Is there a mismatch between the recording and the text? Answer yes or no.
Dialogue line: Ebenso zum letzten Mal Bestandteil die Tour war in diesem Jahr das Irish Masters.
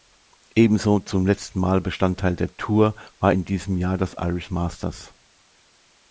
yes